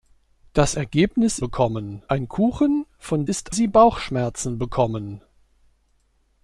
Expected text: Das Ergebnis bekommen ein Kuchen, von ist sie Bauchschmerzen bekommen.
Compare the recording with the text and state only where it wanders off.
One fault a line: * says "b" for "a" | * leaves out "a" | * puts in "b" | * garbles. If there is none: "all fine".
all fine